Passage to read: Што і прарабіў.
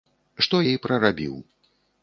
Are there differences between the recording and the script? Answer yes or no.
no